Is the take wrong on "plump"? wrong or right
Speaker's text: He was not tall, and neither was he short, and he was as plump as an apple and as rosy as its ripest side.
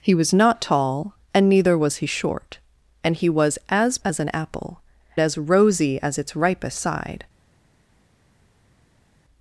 wrong